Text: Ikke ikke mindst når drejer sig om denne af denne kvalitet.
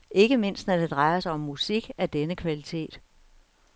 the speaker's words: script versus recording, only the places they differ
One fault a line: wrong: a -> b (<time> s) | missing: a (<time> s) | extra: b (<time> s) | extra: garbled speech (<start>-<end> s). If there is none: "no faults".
missing: ikke (0.4 s)
extra: det (0.8 s)
wrong: denne -> musik (1.4 s)